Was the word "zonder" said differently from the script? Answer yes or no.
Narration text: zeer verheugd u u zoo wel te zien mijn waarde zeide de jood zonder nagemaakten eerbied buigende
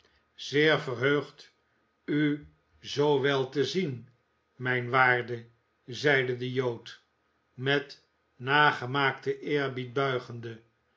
yes